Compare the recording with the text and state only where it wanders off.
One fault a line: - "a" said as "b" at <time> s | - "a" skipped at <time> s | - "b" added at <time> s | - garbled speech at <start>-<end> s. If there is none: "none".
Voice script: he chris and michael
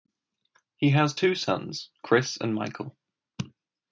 - "has two sons" added at 0.9 s